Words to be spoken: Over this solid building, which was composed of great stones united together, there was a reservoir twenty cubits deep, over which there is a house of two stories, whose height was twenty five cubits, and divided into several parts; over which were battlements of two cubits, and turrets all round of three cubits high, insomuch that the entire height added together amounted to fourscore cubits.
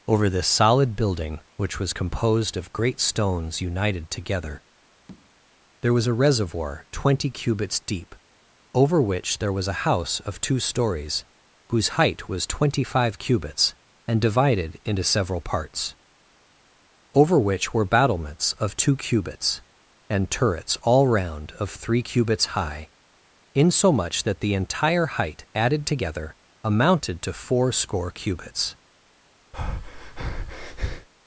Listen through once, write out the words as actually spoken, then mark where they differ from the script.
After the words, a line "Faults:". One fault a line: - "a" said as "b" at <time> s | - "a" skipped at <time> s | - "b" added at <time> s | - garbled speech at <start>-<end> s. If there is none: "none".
Over this solid building, which was composed of great stones united together, there was a reservoir twenty cubits deep, over which there was a house of two stories, whose height was twenty five cubits, and divided into several parts; over which were battlements of two cubits, and turrets all round of three cubits high, insomuch that the entire height added together amounted to fourscore cubits.
Faults:
- "is" said as "was" at 9.5 s